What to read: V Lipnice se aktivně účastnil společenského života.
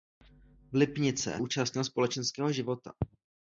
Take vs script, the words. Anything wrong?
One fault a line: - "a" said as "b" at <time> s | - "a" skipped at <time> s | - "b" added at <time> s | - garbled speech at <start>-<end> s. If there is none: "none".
- "se aktivně" skipped at 1.4 s